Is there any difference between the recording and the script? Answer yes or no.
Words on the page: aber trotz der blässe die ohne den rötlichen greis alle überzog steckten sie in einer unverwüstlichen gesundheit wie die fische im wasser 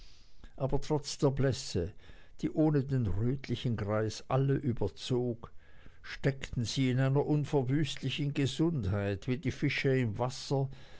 no